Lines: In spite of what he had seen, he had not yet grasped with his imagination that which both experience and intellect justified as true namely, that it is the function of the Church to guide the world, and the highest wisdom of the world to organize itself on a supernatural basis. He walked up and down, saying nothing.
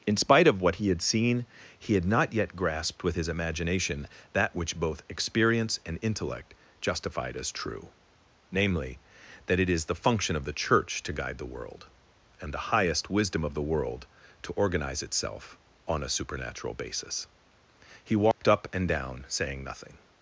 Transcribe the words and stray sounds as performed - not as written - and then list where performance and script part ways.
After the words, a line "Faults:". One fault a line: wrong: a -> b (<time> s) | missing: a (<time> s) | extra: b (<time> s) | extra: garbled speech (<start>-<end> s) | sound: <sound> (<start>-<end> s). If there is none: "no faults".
In spite of what he had seen, he had not yet grasped with his imagination that which both experience and intellect justified as true namely, that it is the function of the Church to guide the world, and the highest wisdom of the world to organize itself on a supernatural basis. He walked up and down, saying nothing.
Faults:
sound: dropout (18.3-18.4 s)